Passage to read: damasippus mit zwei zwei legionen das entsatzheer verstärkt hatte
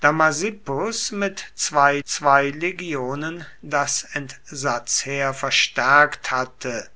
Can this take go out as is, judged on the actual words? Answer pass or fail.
pass